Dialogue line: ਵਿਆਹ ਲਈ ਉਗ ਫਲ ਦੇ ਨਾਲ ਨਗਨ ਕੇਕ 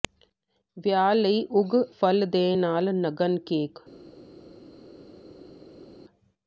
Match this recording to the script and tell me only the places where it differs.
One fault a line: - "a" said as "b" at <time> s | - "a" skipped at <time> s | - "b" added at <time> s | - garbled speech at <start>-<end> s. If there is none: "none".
none